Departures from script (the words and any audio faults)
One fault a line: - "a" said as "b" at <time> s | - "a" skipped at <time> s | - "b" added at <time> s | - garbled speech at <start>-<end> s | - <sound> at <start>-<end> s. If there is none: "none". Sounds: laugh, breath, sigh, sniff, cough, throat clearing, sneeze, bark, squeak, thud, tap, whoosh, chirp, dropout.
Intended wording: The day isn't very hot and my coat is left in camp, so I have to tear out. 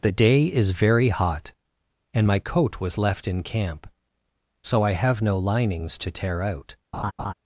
- "isn't" said as "is" at 0.5 s
- "is" said as "was" at 2.8 s
- "no linings" added at 5.2 s
- laugh at 6.9-7.3 s